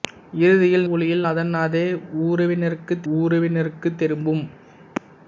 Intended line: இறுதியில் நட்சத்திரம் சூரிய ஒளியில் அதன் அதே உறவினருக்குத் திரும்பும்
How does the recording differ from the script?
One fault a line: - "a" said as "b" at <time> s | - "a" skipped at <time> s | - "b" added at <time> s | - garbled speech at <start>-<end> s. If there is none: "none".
- "நட்சத்திரம் சூரிய" skipped at 0.9 s
- "உறவினருக்குத்" added at 3.1 s